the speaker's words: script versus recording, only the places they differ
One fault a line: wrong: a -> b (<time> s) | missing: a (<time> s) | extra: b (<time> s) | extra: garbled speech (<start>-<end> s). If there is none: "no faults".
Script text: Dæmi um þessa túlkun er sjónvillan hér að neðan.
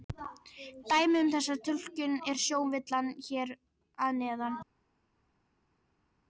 no faults